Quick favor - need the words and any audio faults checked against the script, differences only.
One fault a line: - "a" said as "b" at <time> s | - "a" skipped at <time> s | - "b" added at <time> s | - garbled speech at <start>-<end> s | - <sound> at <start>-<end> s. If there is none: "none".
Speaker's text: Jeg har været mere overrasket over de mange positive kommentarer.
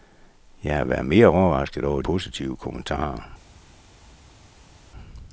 - "de mange" skipped at 2.0 s